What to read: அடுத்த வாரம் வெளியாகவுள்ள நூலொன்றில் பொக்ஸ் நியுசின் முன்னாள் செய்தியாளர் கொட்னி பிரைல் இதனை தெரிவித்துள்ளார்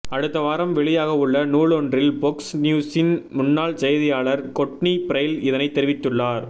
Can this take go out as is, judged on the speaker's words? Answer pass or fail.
pass